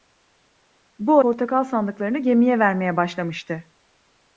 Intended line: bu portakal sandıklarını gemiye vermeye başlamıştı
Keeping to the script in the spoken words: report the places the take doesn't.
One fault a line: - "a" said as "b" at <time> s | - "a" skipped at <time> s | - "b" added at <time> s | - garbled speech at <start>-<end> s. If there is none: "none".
none